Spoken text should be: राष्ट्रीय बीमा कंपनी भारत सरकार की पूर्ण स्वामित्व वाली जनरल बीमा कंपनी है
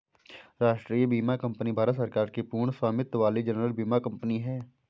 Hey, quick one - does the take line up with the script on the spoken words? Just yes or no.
yes